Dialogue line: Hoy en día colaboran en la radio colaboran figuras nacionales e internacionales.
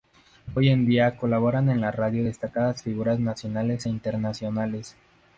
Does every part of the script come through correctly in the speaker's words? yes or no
no